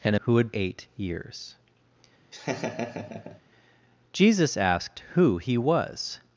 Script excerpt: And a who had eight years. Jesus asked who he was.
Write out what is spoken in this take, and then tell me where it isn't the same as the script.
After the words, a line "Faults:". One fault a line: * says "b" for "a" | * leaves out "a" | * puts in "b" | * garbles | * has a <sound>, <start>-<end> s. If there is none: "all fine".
And a who had eight years. Jesus asked who he was.
Faults:
* has a laugh, 2.3-3.4 s